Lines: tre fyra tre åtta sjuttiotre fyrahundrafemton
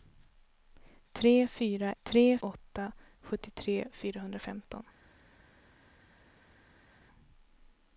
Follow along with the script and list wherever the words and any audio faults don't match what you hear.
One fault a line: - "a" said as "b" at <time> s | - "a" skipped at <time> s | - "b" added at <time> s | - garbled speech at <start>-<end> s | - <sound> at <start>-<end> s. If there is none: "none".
none